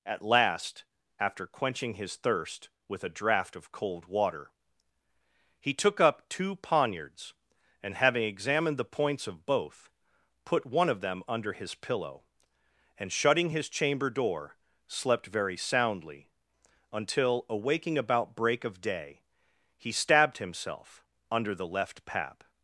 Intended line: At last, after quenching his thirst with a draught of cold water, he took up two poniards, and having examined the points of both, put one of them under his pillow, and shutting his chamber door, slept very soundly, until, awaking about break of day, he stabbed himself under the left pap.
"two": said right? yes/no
yes